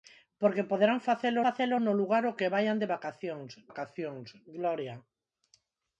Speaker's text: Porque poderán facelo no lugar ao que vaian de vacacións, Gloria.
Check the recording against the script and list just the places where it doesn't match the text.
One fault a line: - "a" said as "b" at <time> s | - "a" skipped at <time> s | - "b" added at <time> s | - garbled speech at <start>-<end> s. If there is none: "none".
- "facelo" added at 1.5 s
- "vacacións" added at 3.7 s